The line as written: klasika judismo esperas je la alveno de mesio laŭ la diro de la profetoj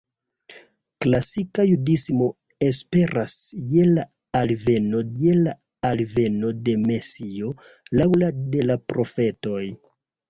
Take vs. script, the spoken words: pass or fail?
fail